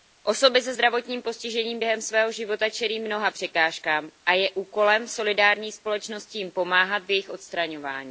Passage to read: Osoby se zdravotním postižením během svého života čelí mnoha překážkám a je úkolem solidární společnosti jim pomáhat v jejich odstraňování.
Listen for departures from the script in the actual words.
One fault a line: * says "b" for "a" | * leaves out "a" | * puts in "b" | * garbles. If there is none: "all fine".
all fine